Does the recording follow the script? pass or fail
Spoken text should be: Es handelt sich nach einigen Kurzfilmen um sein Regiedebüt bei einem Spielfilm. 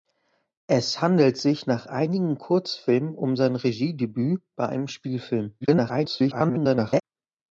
fail